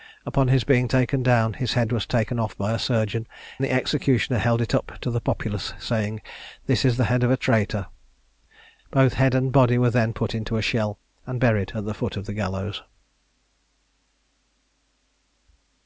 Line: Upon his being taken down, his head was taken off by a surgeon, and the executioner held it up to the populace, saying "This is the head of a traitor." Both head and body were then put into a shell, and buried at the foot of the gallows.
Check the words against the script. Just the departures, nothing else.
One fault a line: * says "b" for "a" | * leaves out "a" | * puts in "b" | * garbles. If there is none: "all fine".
* leaves out "and"